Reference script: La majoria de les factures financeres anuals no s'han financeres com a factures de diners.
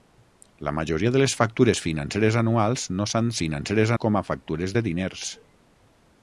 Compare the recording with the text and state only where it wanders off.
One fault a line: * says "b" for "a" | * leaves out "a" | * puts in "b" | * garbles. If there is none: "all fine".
all fine